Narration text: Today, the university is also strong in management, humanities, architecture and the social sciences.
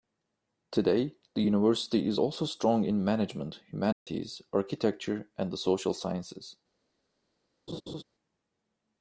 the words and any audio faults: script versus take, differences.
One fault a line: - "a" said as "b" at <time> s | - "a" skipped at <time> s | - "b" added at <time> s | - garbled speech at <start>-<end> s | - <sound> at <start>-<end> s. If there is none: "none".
- dropout at 3.9-4.1 s
- laugh at 7.7-8.0 s